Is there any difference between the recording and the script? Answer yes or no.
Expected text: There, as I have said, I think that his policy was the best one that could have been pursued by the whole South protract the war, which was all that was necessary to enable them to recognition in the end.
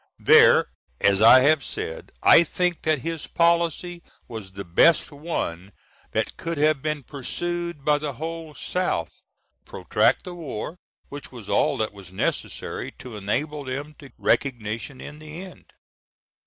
no